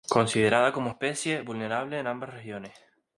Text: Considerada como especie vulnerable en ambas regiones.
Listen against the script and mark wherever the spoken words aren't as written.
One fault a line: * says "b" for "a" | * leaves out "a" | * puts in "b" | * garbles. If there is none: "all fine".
all fine